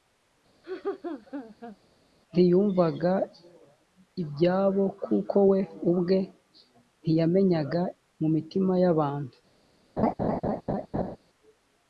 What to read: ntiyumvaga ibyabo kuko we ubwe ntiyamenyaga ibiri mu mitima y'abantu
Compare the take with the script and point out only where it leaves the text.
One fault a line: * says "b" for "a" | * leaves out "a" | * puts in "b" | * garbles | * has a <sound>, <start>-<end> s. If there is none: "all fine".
* has a laugh, 0.6-1.8 s
* leaves out "ibiri"
* has a laugh, 10.0-11.2 s